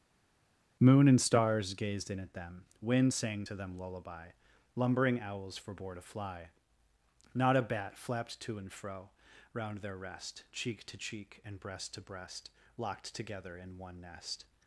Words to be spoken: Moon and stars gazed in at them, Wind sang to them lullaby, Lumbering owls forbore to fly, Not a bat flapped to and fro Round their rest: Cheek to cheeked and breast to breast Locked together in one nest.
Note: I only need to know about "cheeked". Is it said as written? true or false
false